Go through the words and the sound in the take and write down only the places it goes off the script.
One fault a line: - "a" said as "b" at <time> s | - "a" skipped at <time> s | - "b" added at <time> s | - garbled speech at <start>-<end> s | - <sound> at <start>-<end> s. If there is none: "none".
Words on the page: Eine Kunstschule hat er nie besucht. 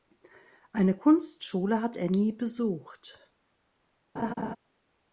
- laugh at 4.2-4.6 s